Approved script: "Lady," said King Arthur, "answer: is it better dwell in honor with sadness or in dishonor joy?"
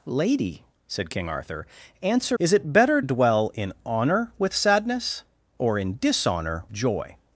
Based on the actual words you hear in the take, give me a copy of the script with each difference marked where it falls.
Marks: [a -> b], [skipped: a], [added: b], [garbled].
"Lady," said King Arthur, "answer: is it better dwell in honor with sadness or in dishonor joy?"